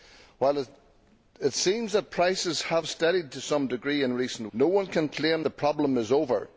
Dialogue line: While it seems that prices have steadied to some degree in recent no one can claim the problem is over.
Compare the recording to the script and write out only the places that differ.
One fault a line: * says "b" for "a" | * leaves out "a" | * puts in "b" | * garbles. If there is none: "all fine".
all fine